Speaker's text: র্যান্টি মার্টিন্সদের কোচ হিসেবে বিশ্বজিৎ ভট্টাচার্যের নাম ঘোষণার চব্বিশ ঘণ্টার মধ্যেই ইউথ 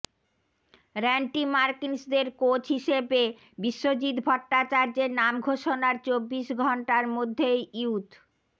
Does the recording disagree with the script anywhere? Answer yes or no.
no